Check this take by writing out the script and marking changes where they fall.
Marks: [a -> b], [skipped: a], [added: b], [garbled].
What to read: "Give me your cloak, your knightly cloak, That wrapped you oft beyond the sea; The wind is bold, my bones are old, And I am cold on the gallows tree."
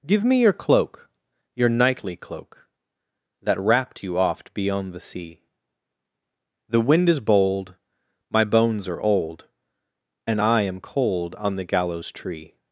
"Give me your cloak, your knightly cloak, That wrapped you oft beyond the sea; The wind is bold, my bones are old, And I am cold on the gallows tree."